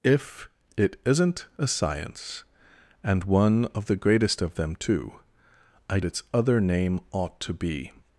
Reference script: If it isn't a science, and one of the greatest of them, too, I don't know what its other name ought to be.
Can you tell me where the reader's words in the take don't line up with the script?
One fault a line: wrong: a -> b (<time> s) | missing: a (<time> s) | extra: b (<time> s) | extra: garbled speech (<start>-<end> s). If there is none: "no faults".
missing: don't know what (6.0 s)